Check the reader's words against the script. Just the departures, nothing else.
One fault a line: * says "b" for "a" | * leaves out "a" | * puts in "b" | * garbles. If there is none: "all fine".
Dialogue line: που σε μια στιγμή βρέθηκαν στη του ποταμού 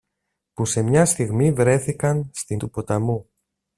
all fine